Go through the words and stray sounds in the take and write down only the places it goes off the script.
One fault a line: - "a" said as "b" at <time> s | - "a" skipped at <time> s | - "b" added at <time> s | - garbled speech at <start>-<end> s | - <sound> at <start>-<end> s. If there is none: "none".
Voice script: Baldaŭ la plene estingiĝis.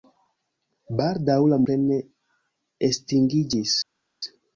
none